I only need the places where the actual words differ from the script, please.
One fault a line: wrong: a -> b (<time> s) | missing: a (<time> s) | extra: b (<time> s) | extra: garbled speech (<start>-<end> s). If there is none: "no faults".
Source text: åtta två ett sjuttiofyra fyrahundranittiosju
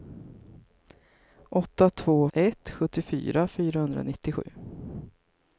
no faults